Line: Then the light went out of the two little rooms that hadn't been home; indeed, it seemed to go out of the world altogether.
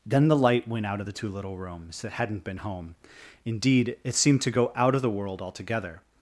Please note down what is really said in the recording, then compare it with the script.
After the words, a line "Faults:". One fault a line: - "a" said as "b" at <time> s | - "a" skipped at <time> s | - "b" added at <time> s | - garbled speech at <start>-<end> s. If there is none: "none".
Then the light went out of the two little rooms that hadn't been home; indeed, it seemed to go out of the world altogether.
Faults:
none